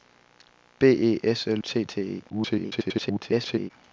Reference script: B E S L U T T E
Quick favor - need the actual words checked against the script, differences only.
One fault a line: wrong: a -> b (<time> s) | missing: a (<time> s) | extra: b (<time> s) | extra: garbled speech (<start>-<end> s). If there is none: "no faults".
missing: U (1.6 s)
extra: garbled speech (2.3-3.7 s)